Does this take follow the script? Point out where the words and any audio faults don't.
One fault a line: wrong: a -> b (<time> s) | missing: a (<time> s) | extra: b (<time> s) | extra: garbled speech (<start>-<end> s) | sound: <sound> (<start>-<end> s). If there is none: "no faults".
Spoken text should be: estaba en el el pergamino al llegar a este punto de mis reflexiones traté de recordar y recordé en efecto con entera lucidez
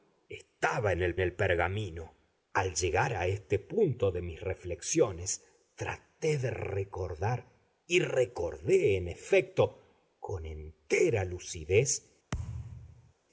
sound: thud (12.3-13.1 s)